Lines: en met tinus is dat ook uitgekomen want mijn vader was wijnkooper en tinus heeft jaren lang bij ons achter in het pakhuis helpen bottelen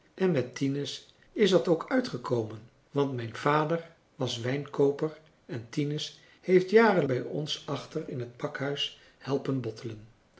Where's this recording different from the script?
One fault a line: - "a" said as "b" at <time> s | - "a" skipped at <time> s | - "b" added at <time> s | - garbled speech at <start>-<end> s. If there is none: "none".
- "lang" skipped at 7.0 s